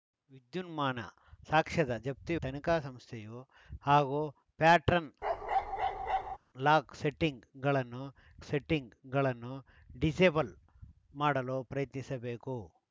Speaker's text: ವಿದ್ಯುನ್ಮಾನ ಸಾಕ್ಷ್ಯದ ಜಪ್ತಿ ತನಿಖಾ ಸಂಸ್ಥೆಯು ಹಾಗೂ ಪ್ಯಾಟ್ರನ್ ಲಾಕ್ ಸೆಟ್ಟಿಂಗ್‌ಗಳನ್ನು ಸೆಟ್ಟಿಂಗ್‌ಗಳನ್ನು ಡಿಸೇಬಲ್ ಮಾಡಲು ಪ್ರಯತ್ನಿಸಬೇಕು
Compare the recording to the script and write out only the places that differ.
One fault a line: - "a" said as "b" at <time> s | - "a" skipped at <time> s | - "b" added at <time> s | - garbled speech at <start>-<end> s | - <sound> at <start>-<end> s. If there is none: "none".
- bark at 5.2-6.4 s